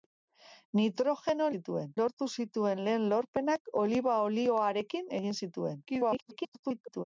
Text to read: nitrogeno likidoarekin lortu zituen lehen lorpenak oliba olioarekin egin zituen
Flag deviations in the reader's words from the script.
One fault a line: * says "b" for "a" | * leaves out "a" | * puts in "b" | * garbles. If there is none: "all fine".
* says "zituen" for "likidoarekin"
* garbles